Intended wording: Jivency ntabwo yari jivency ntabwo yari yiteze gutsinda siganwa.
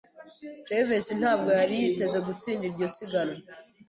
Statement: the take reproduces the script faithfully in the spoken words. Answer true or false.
false